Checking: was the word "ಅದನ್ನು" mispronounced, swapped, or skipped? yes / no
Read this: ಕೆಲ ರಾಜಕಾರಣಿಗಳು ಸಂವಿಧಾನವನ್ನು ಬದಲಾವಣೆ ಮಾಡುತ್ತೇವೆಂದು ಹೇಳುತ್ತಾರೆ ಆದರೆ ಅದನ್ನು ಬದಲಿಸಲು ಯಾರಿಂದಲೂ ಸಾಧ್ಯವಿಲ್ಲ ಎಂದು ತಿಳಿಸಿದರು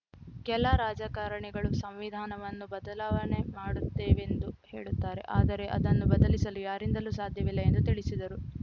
no